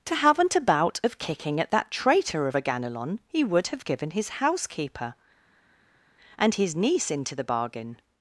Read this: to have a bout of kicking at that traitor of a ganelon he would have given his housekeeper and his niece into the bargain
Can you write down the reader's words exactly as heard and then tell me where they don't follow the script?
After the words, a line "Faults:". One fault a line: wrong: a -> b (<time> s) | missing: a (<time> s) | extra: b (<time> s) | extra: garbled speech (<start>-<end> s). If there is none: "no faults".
to haven't a bout of kicking at that traitor of a ganelon he would have given his housekeeper and his niece into the bargain
Faults:
wrong: have -> haven't (0.1 s)